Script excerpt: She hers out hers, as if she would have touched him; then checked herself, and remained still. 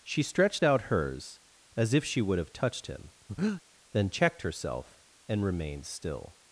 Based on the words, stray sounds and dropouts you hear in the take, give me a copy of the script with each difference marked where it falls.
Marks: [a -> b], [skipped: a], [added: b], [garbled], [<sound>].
She [hers -> stretched] out hers, as if she would have touched him; [breath] then checked herself, and remained still.